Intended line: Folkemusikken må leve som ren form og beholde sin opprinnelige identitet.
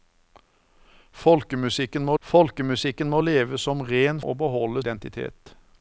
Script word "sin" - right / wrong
wrong